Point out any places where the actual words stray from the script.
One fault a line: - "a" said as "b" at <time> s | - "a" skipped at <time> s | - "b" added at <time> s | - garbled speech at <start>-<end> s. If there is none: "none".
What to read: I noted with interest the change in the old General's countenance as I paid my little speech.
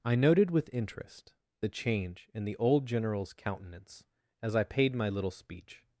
none